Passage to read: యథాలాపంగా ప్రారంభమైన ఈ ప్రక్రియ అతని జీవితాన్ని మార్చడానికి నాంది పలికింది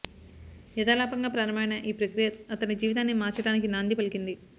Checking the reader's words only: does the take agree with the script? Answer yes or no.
yes